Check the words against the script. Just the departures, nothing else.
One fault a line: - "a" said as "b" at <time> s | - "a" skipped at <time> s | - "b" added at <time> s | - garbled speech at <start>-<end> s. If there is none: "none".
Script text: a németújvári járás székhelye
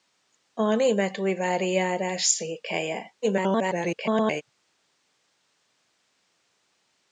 - garbled speech at 3.2-4.4 s